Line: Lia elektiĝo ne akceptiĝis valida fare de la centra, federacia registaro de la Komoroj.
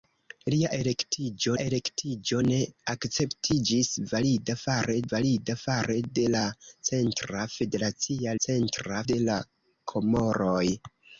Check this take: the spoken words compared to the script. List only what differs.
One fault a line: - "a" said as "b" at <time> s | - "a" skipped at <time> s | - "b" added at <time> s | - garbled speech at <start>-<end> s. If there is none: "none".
- "elektiĝo" added at 1.6 s
- "valida fare" added at 5.1 s
- "registaro" said as "centra" at 8.5 s